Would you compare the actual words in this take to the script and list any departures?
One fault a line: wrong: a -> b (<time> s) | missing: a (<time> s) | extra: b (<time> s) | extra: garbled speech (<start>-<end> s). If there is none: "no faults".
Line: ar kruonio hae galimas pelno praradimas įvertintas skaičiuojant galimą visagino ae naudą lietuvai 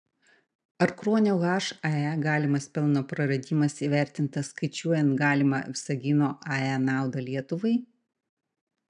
no faults